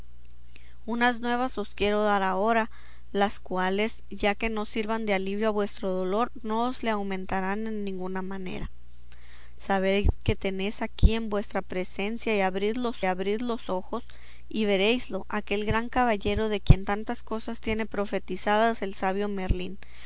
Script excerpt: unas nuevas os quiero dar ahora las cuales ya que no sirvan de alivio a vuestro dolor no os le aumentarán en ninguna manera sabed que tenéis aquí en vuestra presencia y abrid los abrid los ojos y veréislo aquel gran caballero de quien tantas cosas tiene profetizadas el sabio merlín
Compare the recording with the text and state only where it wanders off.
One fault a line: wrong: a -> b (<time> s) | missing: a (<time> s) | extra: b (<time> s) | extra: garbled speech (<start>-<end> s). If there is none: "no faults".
no faults